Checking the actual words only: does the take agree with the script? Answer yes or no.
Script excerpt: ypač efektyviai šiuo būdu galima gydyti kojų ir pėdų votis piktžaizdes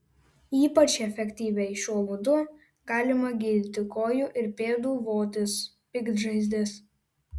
yes